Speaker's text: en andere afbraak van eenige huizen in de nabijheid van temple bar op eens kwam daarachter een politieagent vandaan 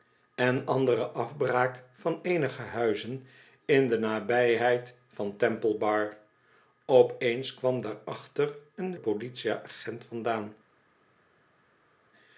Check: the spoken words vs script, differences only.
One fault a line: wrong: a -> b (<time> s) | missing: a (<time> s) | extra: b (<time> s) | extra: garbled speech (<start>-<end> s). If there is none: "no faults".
no faults